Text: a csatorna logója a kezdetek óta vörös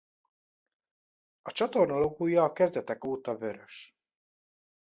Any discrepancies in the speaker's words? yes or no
no